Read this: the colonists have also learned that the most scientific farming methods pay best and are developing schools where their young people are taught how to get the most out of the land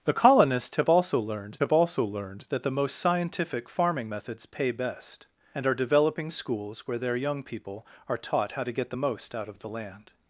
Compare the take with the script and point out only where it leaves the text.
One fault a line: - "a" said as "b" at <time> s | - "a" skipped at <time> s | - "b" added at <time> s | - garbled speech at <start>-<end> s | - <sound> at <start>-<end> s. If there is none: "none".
- "have also learned" added at 1.6 s